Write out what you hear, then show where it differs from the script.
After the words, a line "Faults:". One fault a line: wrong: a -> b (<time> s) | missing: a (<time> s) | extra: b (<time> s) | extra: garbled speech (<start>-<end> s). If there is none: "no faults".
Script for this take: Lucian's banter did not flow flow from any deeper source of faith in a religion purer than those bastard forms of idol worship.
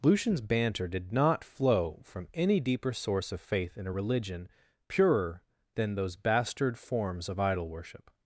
Lucian's banter did not flow from any deeper source of faith in a religion purer than those bastard forms of idol worship.
Faults:
missing: flow (2.0 s)